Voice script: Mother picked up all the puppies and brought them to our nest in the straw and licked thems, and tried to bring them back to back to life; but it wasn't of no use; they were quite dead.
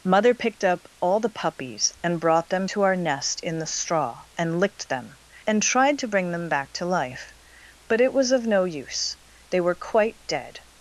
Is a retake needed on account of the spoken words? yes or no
yes